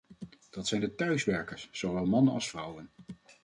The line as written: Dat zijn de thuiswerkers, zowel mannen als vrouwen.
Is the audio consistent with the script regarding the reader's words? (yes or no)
yes